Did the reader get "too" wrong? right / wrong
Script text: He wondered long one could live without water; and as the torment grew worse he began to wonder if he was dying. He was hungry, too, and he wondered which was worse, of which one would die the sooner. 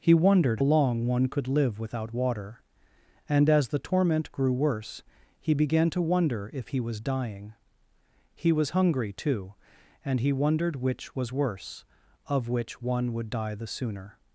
right